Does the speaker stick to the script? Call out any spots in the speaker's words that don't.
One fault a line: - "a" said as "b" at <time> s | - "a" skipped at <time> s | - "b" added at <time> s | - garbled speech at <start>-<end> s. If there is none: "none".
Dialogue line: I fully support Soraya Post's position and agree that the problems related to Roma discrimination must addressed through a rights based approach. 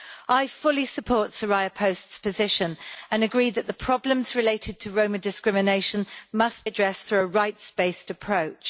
none